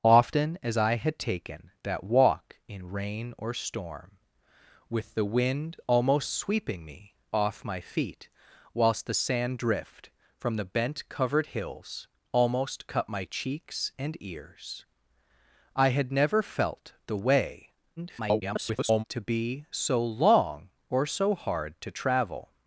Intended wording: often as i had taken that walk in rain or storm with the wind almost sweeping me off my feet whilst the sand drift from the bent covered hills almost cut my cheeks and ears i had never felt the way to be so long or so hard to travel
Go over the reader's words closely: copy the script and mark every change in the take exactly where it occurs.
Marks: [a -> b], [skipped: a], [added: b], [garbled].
often as i had taken that walk in rain or storm with the wind almost sweeping me off my feet whilst the sand drift from the bent covered hills almost cut my cheeks and ears i had never felt the way [garbled] to be so long or so hard to travel